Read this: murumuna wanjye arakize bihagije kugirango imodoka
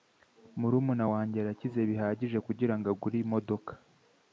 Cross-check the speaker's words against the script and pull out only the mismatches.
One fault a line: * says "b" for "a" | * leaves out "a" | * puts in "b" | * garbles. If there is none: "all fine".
* puts in "agure"